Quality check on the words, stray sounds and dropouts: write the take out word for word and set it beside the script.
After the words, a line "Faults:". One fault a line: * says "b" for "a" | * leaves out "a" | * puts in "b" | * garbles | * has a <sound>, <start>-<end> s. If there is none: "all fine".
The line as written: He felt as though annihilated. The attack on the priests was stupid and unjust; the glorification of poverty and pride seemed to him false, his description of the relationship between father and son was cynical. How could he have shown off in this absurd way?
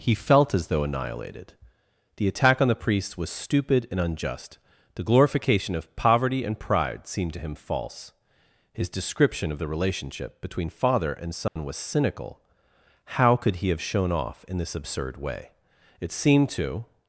He felt as though annihilated. The attack on the priests was stupid and unjust; the glorification of poverty and pride seemed to him false, his description of the relationship between father and son was cynical. How could he have shown off in this absurd way? It seemed to
Faults:
* has a dropout, 11.5-11.6 s
* puts in "It seemed to"